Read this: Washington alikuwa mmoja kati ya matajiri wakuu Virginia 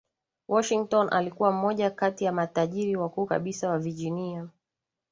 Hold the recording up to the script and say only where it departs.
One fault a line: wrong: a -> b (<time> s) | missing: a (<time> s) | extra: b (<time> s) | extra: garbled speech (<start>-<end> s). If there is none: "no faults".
extra: kabisa wa (3.2 s)